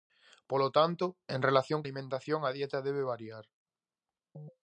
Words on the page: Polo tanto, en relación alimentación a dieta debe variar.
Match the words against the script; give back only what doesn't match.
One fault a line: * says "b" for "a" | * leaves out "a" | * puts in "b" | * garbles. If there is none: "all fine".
all fine